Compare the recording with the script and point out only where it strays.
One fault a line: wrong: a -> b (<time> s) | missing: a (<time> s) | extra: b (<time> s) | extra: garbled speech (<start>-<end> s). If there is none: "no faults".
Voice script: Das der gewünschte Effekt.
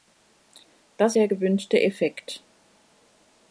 no faults